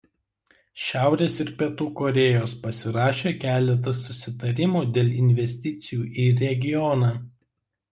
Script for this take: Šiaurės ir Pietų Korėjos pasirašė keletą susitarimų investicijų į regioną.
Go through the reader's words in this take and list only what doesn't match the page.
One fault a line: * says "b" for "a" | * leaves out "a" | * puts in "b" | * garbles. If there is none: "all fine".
* puts in "dėl"